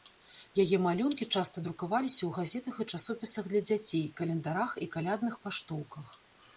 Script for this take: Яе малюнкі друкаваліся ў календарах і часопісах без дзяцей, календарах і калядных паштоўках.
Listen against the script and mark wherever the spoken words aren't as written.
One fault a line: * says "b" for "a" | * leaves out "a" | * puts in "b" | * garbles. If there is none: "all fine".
* puts in "часта"
* says "газетах" for "календарах"
* says "для" for "без"